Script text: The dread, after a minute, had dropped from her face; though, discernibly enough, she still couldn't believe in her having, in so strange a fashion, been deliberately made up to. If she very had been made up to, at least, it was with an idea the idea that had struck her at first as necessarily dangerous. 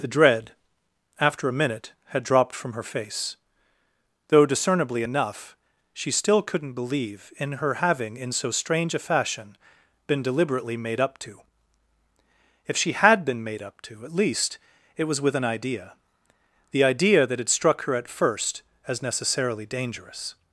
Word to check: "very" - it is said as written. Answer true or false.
false